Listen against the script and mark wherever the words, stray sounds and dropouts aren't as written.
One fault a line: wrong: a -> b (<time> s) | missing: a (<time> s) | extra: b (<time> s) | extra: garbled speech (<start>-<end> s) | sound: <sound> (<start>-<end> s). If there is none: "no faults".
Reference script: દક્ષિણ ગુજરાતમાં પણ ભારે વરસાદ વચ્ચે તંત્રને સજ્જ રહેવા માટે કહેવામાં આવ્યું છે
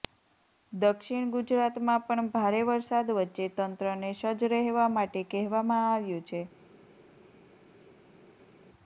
no faults